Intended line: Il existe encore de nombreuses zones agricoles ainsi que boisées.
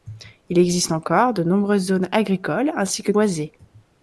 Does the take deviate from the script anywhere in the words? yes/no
no